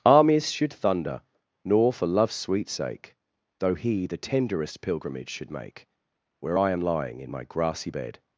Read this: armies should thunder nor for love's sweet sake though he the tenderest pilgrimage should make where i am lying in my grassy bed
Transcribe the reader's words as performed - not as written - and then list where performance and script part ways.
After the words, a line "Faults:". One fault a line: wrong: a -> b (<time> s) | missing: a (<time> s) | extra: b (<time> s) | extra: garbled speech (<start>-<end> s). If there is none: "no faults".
armies should thunder nor for love's sweet sake though he the tenderest pilgrimage should make where i am lying in my grassy bed
Faults:
no faults